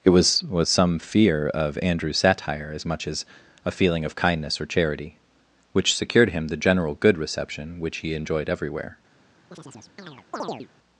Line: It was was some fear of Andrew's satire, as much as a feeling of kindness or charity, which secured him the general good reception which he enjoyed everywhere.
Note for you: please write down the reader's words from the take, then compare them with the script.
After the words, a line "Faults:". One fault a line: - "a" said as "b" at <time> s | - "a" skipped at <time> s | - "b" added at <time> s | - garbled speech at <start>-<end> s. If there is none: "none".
It was was some fear of Andrew's satire, as much as a feeling of kindness or charity, which secured him the general good reception which he enjoyed everywhere.
Faults:
none